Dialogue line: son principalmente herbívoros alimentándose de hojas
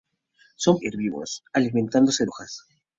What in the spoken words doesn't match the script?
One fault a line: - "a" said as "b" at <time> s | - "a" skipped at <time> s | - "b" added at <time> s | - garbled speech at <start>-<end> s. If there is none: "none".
- "principalmente" skipped at 0.8 s
- "de" skipped at 2.3 s